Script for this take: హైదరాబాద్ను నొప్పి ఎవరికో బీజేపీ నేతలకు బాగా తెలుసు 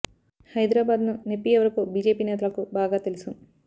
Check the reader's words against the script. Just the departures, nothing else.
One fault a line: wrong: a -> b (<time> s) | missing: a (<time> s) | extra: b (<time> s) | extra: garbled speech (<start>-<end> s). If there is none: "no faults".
no faults